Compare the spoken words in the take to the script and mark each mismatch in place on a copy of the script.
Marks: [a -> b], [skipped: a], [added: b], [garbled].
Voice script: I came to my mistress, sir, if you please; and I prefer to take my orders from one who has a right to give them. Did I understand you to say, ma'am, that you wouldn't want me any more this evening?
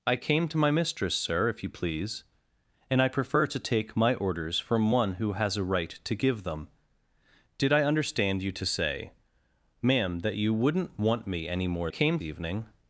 I came to my mistress, sir, if you please; and I prefer to take my orders from one who has a right to give them. Did I understand you to say, ma'am, that you wouldn't want me any more [this -> came] evening?